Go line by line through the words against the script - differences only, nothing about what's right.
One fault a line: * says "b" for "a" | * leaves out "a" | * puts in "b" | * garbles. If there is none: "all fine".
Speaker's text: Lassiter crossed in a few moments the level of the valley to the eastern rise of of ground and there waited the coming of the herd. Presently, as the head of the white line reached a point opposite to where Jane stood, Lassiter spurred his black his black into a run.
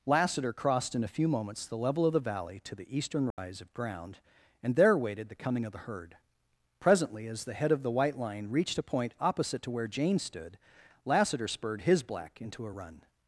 * leaves out "of"
* leaves out "his black"